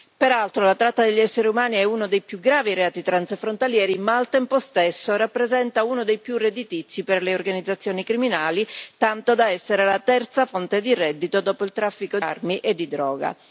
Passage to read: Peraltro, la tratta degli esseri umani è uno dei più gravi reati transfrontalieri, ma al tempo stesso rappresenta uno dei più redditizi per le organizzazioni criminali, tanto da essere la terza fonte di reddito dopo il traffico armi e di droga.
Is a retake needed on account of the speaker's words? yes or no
no